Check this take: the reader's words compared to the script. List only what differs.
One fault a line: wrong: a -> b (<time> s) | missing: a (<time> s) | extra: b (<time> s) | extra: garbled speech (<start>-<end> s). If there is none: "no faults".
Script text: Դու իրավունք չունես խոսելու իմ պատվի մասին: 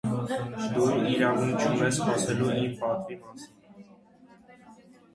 no faults